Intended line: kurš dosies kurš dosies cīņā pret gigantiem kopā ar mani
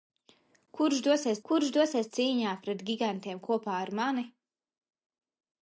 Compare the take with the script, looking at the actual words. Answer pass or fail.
pass